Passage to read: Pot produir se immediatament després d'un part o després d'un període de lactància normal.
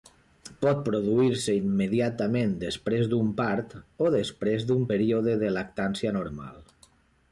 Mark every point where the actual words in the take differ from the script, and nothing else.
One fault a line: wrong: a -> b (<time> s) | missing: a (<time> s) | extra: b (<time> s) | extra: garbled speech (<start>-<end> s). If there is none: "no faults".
no faults